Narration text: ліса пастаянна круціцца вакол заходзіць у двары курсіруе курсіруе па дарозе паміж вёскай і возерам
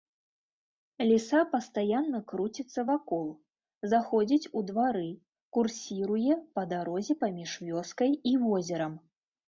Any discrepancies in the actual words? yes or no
yes